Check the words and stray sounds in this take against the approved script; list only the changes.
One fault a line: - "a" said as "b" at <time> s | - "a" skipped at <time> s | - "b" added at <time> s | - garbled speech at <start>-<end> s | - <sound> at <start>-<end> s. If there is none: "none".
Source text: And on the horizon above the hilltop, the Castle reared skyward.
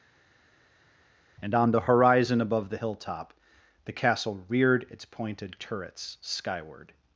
- "its pointed turrets" added at 4.9 s